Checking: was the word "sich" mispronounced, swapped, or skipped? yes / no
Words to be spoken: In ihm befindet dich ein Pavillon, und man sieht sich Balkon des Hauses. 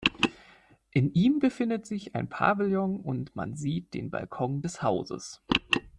yes